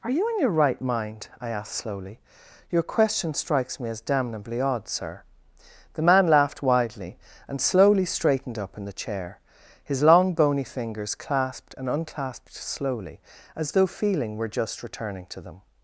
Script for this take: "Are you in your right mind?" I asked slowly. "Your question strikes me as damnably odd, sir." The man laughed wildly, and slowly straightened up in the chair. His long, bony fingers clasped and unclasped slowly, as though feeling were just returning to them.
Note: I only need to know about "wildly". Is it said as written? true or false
false